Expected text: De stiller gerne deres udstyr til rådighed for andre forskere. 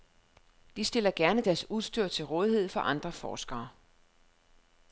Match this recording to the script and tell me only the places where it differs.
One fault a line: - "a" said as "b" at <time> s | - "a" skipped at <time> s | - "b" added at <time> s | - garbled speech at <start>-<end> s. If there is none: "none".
none